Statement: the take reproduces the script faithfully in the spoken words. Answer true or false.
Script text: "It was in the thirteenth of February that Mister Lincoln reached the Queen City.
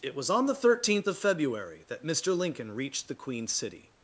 false